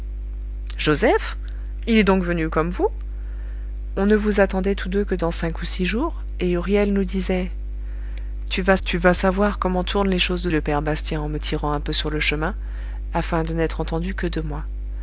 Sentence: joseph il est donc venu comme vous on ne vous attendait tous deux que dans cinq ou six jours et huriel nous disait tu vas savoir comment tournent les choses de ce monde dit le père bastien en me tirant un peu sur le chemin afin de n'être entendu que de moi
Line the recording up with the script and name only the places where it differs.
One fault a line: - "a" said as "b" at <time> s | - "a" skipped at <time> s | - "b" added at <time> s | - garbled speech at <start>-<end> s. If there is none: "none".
- "tu vas" added at 8.8 s
- "ce monde dit" skipped at 10.5 s